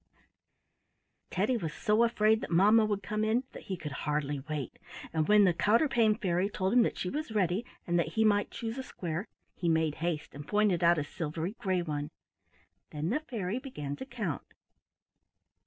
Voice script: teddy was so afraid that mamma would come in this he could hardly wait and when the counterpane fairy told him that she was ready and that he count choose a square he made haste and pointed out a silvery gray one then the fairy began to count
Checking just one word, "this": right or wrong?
wrong